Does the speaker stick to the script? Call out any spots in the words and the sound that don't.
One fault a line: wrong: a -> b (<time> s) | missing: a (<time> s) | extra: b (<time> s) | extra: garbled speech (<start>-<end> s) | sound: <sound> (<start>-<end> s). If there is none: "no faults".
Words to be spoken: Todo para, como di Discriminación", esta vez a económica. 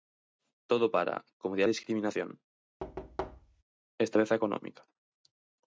sound: thud (2.8-3.6 s)